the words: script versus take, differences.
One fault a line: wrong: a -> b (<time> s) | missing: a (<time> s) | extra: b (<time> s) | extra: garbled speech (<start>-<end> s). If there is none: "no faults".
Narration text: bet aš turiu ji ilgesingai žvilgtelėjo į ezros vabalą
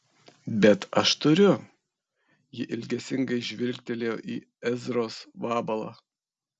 no faults